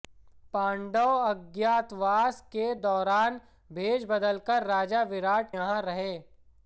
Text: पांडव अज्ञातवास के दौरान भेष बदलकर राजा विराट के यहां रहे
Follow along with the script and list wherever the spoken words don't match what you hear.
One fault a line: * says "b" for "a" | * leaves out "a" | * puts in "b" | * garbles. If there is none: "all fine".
* leaves out "के"